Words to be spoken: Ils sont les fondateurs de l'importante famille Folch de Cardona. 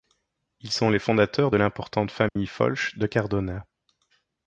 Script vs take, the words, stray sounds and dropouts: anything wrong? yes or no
yes